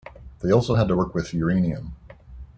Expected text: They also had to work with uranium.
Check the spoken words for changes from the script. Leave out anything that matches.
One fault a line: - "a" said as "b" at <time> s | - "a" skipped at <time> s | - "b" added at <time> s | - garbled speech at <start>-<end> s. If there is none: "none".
none